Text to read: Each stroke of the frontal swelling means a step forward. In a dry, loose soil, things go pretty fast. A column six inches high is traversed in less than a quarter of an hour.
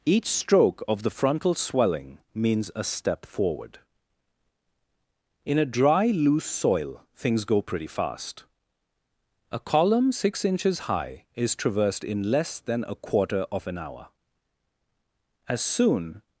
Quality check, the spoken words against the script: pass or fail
fail